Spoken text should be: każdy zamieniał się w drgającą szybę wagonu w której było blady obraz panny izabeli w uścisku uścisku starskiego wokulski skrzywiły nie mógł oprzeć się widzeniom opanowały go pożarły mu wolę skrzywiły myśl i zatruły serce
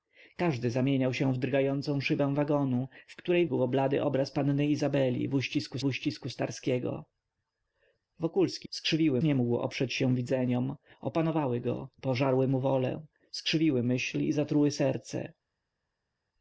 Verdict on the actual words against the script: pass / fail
pass